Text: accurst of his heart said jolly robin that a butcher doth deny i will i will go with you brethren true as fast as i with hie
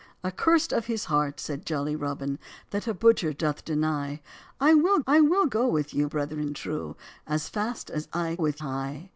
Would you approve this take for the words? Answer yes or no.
yes